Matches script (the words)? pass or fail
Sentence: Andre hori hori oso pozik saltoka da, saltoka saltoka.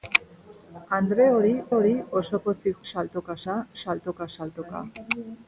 pass